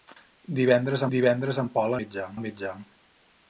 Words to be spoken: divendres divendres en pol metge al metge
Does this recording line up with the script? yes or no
yes